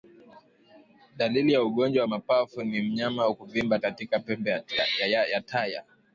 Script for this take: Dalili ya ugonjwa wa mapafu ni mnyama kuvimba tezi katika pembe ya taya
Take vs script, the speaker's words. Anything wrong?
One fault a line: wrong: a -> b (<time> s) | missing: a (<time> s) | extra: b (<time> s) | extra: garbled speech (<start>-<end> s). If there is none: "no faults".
missing: tezi (3.8 s)